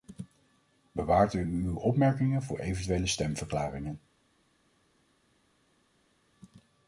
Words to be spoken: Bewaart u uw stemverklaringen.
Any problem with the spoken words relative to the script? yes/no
yes